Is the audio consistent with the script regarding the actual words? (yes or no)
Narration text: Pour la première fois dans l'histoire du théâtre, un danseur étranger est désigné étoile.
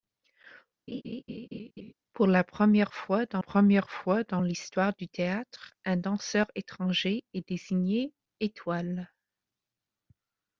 no